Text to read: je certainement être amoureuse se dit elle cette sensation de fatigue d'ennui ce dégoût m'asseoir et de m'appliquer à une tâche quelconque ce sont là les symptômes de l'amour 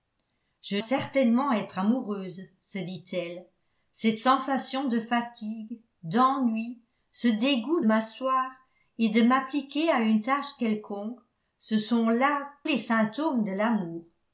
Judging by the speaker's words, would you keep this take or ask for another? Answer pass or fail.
pass